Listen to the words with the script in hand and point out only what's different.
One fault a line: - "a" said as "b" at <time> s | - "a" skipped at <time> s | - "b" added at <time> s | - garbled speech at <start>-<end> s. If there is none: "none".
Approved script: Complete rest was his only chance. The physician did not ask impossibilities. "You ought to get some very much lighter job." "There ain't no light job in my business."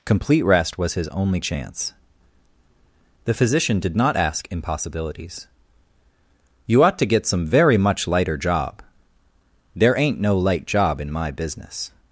none